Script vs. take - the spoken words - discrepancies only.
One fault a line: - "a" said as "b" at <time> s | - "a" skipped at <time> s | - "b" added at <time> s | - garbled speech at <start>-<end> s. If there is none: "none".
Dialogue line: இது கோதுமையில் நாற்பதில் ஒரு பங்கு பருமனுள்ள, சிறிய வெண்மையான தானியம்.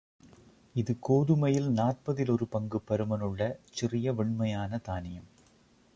none